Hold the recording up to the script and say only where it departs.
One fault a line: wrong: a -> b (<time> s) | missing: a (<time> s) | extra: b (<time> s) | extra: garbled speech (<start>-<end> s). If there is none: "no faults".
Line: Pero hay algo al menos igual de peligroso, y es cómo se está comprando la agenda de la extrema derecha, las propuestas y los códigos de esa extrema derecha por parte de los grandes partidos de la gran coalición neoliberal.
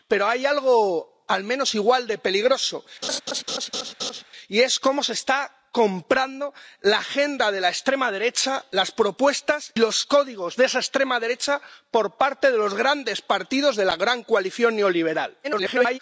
missing: y (9.7 s)
extra: garbled speech (15.4-16.0 s)